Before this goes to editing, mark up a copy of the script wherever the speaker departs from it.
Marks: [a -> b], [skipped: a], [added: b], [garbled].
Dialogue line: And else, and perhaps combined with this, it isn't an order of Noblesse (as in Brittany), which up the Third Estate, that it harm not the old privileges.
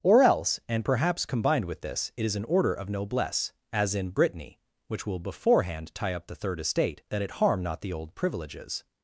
[And -> Or] else, and perhaps combined with this, it [isn't -> is] an order of Noblesse (as in Brittany), which [added: will beforehand tie] up the Third Estate, that it harm not the old privileges.